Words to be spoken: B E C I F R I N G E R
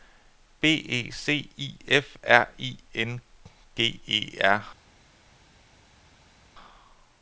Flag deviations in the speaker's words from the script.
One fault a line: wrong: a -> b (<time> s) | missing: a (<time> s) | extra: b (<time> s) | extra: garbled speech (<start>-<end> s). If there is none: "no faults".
no faults